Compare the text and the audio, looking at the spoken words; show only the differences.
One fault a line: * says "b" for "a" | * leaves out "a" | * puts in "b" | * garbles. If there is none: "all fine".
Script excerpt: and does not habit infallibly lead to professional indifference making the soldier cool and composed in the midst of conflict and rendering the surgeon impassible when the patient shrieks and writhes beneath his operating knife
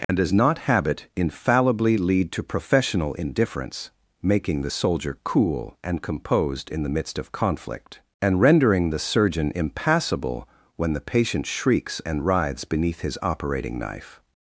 all fine